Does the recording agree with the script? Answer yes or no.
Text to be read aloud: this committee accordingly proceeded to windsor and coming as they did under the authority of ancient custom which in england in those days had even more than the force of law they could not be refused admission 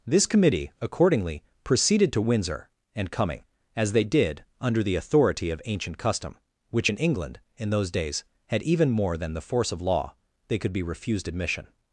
no